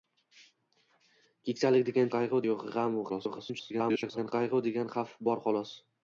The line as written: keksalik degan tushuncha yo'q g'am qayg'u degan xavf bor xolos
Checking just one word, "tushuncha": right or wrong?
wrong